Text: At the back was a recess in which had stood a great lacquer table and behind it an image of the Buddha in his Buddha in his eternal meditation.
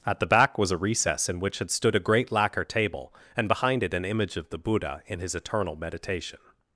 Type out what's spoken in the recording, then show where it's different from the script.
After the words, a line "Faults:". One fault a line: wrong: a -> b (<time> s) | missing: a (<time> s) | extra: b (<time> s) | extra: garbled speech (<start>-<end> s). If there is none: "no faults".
At the back was a recess in which had stood a great lacquer table and behind it an image of the Buddha in his eternal meditation.
Faults:
missing: Buddha in his (5.3 s)